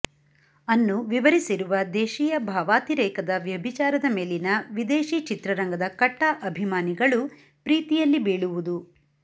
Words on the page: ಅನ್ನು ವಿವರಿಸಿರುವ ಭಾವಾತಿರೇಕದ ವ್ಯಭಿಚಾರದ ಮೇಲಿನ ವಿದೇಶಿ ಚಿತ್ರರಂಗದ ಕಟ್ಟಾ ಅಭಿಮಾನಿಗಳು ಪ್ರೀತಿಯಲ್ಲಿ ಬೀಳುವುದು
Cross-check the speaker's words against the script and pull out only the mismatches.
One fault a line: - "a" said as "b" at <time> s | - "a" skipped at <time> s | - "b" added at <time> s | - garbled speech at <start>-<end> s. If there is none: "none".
- "ದೇಶೀಯ" added at 1.9 s